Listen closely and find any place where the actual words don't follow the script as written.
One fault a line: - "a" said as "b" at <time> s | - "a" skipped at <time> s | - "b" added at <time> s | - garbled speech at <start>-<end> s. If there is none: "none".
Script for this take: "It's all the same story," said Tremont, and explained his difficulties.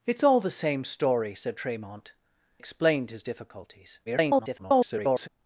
- "and" skipped at 2.1 s
- garbled speech at 4.1-5.3 s